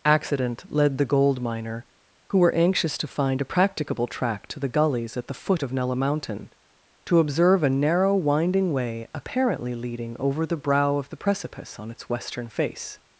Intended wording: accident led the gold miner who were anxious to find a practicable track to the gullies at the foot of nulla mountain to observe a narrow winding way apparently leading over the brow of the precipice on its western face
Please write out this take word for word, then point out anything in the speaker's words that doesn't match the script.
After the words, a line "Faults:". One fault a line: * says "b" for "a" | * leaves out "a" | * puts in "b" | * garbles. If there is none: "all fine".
accident led the gold miner who were anxious to find a practicable track to the gullies at the foot of nulla mountain to observe a narrow winding way apparently leading over the brow of the precipice on its western face
Faults:
all fine